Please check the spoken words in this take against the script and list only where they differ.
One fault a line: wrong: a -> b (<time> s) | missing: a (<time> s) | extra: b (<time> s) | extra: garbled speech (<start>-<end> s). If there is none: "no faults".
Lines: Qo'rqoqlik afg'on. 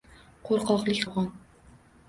no faults